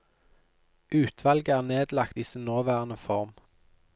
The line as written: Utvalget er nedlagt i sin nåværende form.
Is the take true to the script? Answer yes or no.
yes